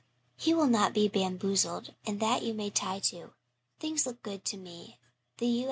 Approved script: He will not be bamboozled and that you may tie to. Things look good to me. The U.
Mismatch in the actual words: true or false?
false